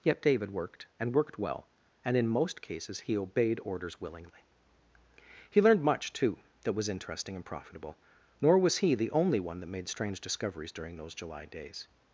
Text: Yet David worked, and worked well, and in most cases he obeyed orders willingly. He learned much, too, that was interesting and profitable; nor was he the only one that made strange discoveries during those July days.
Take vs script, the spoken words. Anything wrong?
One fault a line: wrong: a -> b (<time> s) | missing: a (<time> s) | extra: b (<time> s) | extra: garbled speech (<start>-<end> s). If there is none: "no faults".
no faults